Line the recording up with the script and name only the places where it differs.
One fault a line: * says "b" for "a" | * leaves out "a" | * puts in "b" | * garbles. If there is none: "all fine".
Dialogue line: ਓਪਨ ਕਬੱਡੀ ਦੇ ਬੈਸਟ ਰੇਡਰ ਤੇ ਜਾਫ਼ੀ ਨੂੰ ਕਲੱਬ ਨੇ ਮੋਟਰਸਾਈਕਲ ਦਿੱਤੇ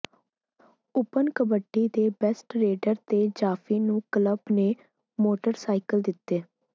all fine